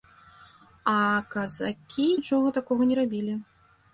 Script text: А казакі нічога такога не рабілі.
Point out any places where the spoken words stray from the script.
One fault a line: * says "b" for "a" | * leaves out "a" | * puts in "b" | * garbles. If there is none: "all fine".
all fine